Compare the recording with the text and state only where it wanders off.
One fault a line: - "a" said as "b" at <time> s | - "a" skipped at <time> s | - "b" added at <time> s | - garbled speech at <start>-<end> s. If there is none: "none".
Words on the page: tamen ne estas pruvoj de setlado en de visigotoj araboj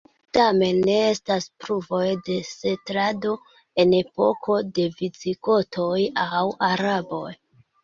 - "epoko" added at 4.0 s
- "aŭ" added at 6.3 s